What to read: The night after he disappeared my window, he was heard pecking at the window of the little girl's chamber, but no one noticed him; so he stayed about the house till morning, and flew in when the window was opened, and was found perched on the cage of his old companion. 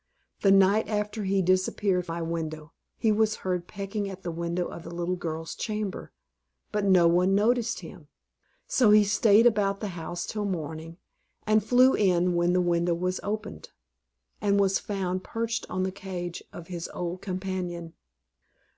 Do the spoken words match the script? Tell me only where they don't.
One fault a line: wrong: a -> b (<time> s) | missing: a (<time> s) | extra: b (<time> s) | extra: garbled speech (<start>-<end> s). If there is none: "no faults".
no faults